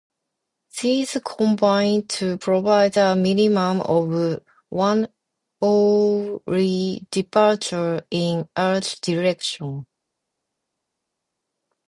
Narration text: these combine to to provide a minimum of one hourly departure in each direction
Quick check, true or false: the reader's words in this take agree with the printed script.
false